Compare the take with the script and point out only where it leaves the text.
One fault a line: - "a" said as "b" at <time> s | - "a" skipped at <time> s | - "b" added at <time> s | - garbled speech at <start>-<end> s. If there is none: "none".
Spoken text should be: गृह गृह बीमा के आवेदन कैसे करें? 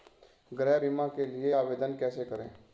- "गृह" skipped at 0.8 s
- "लिए" added at 1.2 s